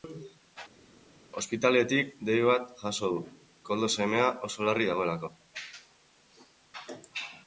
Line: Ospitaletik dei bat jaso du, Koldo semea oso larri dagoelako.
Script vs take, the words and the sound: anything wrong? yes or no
no